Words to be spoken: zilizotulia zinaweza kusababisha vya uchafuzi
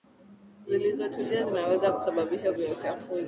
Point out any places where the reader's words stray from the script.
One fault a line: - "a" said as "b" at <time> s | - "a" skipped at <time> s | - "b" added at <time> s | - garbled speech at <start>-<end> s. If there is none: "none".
none